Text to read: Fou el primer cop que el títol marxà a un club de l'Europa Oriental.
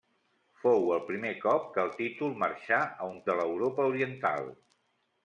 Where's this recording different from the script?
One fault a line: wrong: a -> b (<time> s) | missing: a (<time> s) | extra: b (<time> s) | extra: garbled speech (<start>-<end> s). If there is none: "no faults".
missing: club (3.2 s)